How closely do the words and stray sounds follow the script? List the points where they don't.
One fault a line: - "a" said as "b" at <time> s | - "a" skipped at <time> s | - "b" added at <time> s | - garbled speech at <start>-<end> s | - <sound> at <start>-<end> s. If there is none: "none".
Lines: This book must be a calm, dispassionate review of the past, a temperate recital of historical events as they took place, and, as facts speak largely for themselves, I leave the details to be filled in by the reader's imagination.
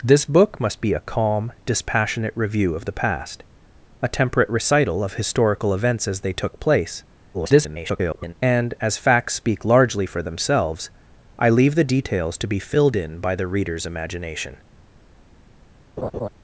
- garbled speech at 7.3-8.3 s
- laugh at 16.0-16.3 s